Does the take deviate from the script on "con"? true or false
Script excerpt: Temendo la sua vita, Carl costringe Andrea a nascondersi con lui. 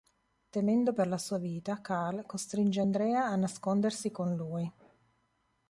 false